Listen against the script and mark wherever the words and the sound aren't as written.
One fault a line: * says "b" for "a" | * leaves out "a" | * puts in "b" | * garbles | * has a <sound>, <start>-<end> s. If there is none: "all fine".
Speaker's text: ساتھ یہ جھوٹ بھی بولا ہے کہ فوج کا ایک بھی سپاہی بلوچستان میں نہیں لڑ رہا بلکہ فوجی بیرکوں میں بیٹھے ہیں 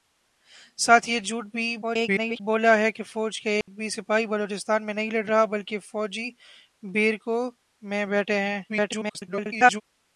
* garbles
* has a dropout, 3.6-3.7 s
* garbles